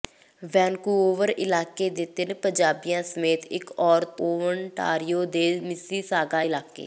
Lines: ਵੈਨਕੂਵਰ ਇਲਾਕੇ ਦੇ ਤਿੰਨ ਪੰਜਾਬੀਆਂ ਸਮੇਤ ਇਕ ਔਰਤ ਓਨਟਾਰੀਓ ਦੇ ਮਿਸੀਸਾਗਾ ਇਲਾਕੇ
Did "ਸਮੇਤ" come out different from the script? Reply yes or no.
no